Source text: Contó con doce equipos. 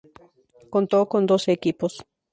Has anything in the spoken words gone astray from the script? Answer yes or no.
no